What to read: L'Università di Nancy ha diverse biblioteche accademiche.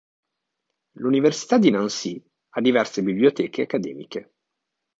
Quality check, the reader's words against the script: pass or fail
pass